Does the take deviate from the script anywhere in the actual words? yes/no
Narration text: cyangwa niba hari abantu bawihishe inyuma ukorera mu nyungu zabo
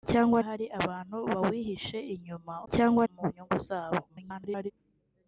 yes